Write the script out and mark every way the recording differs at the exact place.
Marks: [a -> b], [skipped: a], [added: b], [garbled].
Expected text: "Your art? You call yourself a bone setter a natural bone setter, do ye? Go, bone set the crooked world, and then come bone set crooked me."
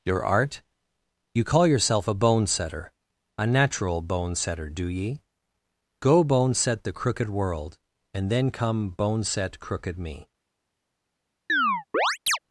"Your art? You call yourself a bone setter a natural bone setter, do ye? Go, bone set the crooked world, and then come bone set crooked me."